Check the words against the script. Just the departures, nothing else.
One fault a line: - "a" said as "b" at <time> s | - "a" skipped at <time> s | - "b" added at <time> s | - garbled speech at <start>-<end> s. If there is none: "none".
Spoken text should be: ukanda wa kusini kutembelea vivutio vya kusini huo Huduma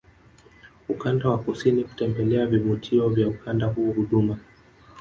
- "kusini" said as "ukanda" at 3.3 s